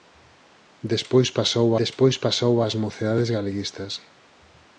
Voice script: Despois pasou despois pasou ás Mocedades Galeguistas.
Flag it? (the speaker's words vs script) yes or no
no